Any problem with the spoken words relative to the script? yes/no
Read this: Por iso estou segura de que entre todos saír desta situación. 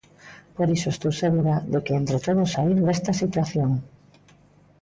no